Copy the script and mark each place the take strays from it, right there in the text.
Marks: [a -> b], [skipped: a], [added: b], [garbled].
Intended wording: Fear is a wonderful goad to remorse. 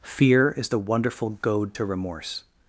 Fear is [a -> the] wonderful goad to remorse.